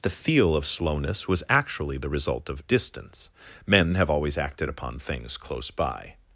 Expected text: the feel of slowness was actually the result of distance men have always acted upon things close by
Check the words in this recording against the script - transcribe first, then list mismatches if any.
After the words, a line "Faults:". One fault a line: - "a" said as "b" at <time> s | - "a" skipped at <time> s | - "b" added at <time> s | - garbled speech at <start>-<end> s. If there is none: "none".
the feel of slowness was actually the result of distance men have always acted upon things close by
Faults:
none